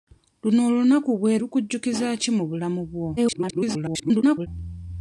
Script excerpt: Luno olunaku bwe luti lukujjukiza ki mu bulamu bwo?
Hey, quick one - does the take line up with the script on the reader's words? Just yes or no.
no